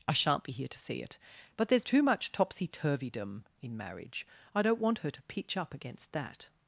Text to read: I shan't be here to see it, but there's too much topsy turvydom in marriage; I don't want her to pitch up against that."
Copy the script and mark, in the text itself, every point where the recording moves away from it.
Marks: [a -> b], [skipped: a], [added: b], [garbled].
I shan't be here to see it, but there's too much topsy turvydom in marriage; I don't want her to pitch up against that."